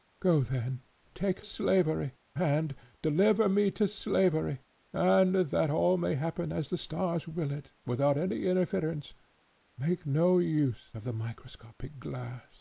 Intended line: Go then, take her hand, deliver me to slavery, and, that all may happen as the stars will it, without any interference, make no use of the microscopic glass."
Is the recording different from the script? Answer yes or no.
yes